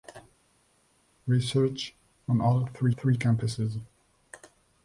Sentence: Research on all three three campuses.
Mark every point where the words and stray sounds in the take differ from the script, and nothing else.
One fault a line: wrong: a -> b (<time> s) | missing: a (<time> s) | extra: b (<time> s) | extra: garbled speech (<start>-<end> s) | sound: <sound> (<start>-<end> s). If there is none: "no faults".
no faults